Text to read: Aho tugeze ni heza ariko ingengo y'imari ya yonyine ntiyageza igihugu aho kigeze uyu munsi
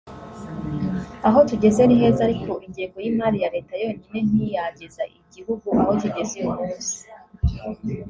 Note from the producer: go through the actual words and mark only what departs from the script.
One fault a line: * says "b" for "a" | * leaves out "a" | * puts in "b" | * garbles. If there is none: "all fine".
* puts in "leta"